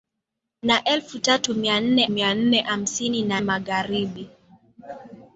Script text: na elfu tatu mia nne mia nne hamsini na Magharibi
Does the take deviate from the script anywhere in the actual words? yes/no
no